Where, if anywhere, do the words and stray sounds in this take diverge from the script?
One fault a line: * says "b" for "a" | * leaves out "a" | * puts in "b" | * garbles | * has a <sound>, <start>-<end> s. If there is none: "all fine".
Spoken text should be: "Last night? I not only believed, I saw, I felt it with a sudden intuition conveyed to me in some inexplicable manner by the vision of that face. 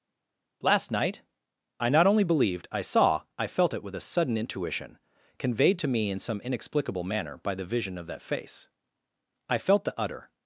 * puts in "I felt the utter"